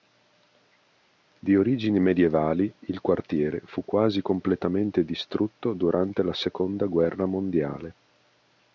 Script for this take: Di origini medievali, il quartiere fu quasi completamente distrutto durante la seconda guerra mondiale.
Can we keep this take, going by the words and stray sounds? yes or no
yes